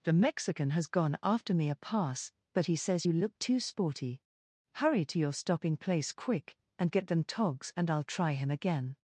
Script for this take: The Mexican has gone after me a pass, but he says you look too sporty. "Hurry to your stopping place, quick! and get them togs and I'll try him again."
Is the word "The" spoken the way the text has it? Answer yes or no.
yes